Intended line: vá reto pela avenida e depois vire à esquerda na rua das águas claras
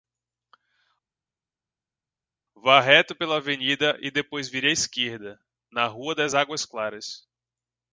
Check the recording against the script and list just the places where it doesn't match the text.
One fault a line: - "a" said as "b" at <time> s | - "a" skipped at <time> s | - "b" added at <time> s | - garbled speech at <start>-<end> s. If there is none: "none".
none